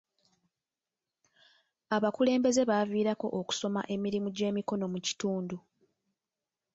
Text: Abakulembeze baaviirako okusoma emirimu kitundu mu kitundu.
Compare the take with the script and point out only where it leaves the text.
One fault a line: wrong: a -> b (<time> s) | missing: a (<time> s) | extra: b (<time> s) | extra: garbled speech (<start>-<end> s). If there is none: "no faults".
wrong: kitundu -> gy'emikono (4.4 s)